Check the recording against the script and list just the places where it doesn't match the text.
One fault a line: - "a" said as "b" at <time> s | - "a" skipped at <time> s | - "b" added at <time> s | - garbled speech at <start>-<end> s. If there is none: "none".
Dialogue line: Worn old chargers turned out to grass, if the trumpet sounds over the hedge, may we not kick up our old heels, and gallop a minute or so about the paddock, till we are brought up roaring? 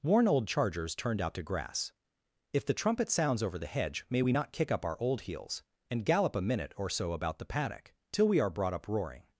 none